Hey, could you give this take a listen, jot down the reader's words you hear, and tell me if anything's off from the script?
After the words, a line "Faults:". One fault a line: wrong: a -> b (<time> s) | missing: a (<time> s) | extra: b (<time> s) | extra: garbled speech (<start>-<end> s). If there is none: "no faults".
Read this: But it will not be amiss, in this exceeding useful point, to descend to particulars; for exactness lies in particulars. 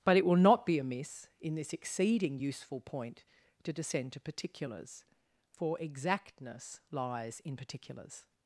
But it will not be amiss, in this exceeding useful point, to descend to particulars; for exactness lies in particulars.
Faults:
no faults